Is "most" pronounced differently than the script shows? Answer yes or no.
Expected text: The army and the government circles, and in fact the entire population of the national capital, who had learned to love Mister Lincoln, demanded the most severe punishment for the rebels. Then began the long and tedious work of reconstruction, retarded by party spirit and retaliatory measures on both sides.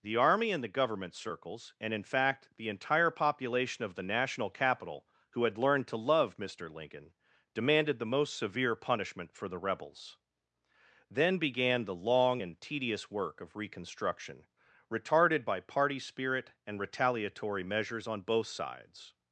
no